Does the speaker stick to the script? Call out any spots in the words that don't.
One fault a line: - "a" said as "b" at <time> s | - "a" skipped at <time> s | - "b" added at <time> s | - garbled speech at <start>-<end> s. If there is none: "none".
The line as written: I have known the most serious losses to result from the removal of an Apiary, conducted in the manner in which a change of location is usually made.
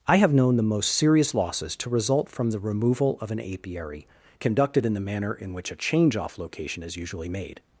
- "of" said as "off" at 6.2 s